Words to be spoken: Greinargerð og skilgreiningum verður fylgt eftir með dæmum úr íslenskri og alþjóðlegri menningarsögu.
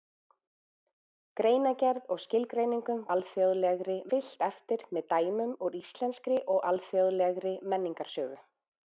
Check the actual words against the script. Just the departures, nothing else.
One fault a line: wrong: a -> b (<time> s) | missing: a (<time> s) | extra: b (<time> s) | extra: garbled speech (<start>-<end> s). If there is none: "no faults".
wrong: verður -> alþjóðlegri (3.2 s)